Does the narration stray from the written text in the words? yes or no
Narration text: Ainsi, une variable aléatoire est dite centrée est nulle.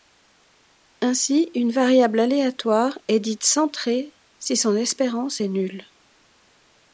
yes